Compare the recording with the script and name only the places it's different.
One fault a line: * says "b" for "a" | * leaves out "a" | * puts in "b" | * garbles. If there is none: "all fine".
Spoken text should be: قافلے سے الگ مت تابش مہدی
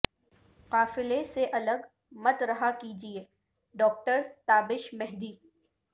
* puts in "رہا کیجئے ڈاکٹر"